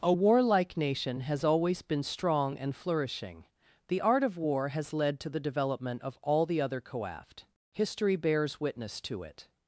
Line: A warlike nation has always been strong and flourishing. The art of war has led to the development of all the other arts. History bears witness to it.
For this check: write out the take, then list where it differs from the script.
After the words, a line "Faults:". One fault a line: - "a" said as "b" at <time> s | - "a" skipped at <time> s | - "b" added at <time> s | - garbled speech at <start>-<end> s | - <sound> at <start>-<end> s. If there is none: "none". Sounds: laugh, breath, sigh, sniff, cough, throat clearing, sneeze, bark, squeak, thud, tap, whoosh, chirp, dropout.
A warlike nation has always been strong and flourishing. The art of war has led to the development of all the other coaft. History bears witness to it.
Faults:
- "arts" said as "coaft" at 6.8 s